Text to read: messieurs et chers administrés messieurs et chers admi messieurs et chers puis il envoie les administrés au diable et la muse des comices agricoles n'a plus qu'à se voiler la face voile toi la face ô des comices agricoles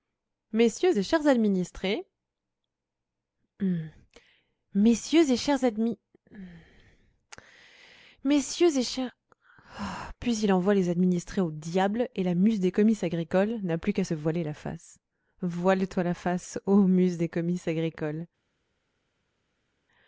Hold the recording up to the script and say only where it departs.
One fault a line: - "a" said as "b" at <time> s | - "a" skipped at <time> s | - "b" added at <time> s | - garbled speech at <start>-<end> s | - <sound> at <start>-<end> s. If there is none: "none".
- "muse" added at 16.9 s